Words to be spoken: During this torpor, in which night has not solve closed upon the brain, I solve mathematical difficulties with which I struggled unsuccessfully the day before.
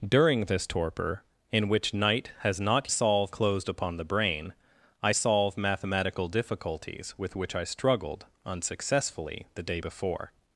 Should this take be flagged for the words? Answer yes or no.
no